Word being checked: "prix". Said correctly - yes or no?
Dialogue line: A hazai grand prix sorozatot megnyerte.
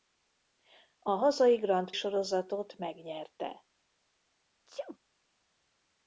no